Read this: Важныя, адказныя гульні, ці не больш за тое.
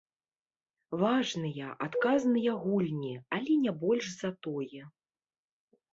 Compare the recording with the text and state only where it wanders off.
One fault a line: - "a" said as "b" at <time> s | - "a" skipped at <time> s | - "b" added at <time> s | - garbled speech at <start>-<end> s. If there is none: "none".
- "ці" said as "але" at 3.4 s